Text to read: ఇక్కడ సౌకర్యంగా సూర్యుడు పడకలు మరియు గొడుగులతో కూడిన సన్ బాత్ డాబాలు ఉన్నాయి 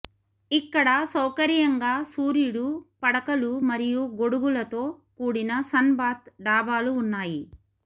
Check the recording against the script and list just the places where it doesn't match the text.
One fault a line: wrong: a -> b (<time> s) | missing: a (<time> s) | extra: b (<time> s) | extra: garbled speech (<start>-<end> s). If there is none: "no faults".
no faults